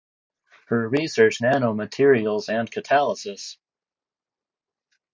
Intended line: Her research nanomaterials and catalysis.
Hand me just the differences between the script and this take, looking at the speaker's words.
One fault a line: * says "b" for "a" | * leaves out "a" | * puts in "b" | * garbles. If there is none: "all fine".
all fine